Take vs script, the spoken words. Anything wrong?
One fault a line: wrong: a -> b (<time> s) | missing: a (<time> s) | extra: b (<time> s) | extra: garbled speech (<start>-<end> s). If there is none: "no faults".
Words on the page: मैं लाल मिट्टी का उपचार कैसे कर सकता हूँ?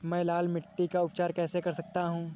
no faults